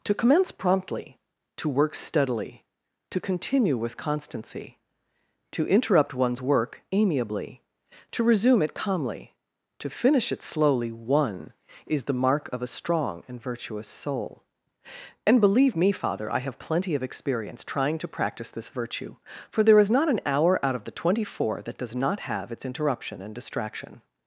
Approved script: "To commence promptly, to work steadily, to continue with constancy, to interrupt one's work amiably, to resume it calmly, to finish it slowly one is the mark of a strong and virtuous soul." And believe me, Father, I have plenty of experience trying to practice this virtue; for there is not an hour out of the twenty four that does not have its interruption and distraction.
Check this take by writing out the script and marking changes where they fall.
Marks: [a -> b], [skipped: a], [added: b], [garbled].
"To commence promptly, to work steadily, to continue with constancy, to interrupt one's work amiably, to resume it calmly, to finish it slowly one is the mark of a strong and virtuous soul." And believe me, Father, I have plenty of experience trying to practice this virtue; for there is not an hour out of the twenty four that does not have its interruption and distraction.